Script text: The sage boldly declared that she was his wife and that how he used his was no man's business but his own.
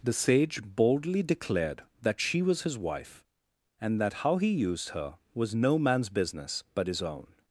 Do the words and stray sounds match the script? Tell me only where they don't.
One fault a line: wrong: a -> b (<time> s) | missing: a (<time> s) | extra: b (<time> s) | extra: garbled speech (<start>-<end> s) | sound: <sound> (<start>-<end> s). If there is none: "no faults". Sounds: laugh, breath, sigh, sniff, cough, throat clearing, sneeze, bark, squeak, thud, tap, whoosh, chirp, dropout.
wrong: his -> her (4.9 s)